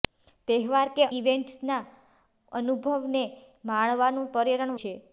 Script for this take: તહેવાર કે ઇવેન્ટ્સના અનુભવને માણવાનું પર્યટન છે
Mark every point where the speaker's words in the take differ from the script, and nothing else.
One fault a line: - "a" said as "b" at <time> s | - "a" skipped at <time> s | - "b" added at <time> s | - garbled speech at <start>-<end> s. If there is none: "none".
none